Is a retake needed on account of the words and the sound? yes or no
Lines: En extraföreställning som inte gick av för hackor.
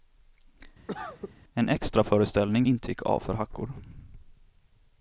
yes